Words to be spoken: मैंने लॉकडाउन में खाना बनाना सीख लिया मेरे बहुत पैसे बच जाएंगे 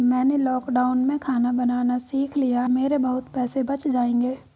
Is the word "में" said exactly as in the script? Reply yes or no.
yes